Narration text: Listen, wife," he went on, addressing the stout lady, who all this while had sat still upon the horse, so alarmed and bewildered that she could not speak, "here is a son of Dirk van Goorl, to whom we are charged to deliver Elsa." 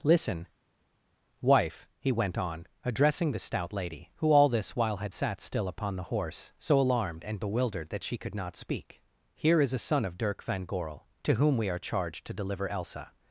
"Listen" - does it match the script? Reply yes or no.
yes